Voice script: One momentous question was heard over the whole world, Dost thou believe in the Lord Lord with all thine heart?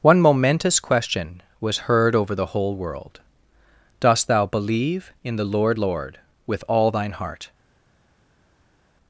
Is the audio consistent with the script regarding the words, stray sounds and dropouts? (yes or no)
yes